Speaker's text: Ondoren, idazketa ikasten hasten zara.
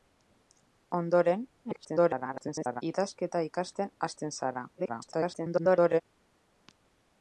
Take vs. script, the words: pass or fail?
fail